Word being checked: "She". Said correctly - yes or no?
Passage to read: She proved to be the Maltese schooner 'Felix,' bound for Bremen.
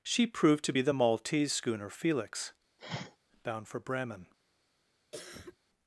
yes